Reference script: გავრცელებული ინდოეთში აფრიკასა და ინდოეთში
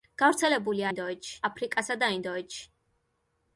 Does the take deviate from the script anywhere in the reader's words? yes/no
no